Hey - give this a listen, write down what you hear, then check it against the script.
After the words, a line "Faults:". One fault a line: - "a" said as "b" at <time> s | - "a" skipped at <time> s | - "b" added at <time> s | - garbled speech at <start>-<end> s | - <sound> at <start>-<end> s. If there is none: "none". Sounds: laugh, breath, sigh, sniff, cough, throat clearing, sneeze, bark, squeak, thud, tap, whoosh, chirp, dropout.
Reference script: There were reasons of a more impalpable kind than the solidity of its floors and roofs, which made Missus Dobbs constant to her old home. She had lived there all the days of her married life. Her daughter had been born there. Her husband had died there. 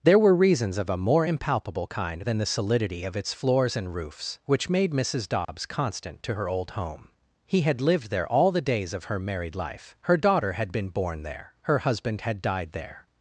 There were reasons of a more impalpable kind than the solidity of its floors and roofs, which made Missus Dobbs constant to her old home. He had lived there all the days of her married life. Her daughter had been born there. Her husband had died there.
Faults:
- dropout at 5.4-5.5 s
- "She" said as "He" at 7.5 s